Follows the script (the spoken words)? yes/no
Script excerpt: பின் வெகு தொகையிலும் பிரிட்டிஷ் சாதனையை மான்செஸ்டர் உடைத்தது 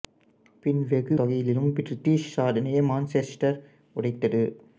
yes